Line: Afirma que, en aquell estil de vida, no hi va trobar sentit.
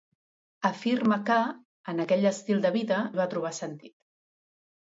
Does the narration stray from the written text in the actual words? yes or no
yes